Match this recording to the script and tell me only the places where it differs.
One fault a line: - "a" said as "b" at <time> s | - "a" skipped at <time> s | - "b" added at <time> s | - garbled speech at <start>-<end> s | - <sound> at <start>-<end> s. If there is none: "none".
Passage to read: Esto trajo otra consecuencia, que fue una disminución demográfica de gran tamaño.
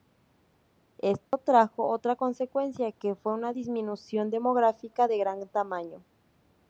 - dropout at 1.3-1.3 s